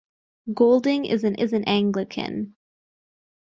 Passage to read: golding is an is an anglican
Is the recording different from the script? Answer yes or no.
no